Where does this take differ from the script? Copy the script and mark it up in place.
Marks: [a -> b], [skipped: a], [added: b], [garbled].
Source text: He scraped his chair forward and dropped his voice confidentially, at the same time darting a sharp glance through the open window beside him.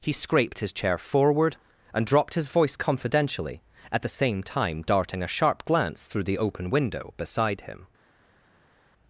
He scraped his chair forward and dropped his voice confidentially, at the same time darting a sharp glance through the open window beside him.